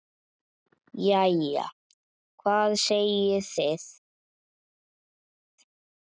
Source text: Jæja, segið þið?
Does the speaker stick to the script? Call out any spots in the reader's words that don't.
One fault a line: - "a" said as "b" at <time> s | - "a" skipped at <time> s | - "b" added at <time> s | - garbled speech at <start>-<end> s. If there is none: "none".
- "hvað" added at 2.4 s